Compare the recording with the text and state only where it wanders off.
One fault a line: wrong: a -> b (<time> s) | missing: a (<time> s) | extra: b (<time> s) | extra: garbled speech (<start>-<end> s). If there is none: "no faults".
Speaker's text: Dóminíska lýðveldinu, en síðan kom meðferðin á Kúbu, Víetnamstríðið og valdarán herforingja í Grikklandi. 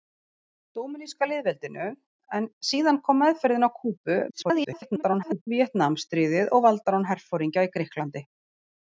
extra: garbled speech (4.3-5.5 s)